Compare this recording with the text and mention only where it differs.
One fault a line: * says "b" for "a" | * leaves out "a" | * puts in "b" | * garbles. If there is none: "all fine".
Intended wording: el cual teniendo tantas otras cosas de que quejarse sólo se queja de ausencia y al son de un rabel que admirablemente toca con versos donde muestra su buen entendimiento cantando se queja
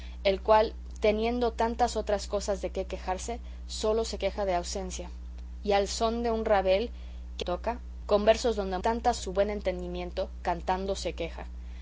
* leaves out "admirablemente"
* says "tantas" for "muestra"